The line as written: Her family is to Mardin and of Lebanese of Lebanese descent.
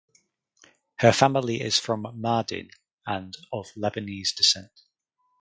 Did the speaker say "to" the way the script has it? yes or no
no